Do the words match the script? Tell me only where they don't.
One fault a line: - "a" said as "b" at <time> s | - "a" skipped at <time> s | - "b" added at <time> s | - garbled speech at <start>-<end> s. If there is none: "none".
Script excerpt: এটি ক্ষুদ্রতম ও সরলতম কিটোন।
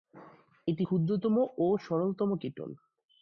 none